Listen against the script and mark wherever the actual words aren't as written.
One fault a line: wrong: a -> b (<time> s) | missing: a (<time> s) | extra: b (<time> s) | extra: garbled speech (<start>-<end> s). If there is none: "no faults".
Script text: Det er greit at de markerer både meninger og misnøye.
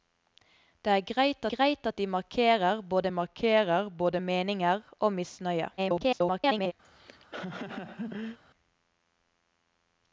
extra: greit (1.6 s)
extra: markerer både (3.1 s)
extra: garbled speech (5.8-6.7 s)